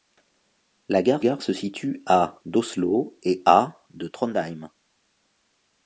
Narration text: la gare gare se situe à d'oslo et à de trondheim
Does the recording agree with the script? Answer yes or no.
yes